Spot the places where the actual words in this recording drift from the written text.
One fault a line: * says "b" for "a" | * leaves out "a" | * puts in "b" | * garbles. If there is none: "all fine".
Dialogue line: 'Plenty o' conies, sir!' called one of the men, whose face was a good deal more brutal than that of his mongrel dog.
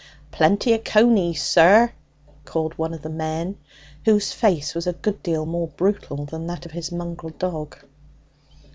all fine